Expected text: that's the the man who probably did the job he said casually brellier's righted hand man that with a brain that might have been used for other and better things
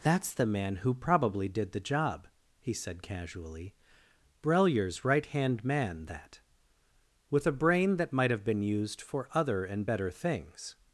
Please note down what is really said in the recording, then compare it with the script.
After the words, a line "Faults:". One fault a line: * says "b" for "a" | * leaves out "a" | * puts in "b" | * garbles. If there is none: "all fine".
that's the man who probably did the job he said casually brellier's right hand man that with a brain that might have been used for other and better things
Faults:
* leaves out "the"
* says "right" for "righted"